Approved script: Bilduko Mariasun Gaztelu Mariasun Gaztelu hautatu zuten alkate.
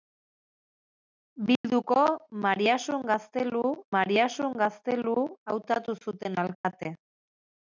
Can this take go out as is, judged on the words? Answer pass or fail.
pass